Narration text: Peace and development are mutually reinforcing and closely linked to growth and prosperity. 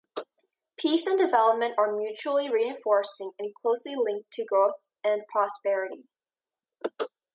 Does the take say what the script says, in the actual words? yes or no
yes